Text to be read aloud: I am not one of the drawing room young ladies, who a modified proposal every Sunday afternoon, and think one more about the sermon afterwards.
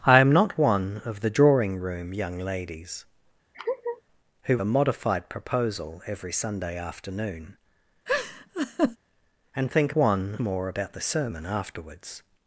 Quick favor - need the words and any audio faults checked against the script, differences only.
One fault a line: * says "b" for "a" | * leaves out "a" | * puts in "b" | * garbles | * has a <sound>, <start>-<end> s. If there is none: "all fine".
* has a laugh, 3.5-4.0 s
* has a laugh, 8.1-9.0 s